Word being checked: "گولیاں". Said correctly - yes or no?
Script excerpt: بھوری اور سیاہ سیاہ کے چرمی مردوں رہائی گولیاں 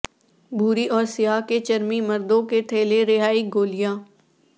yes